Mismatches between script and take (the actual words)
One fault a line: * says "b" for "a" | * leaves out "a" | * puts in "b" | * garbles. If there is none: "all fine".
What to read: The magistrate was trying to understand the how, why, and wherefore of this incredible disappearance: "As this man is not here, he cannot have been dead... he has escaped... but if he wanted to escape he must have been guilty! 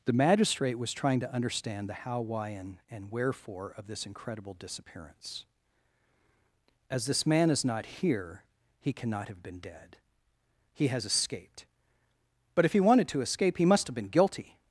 * puts in "and"